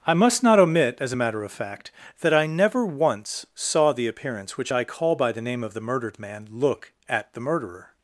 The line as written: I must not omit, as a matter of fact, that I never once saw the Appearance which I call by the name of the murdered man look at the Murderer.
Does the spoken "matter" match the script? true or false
true